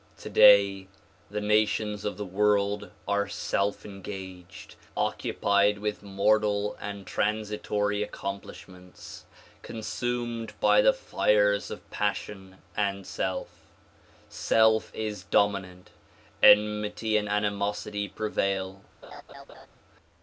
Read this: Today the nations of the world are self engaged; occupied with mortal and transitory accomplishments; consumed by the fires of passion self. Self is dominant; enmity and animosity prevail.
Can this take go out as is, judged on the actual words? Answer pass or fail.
fail